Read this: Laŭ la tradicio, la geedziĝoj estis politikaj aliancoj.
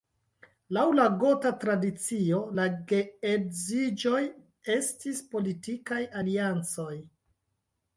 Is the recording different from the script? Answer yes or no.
yes